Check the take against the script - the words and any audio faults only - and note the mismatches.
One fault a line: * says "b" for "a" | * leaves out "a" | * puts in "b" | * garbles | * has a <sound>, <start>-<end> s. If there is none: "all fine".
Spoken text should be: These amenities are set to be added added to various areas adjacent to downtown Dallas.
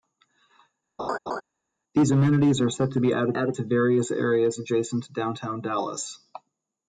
* has a laugh, 1.0-1.4 s